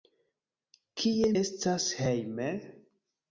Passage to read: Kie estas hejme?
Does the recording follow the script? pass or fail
pass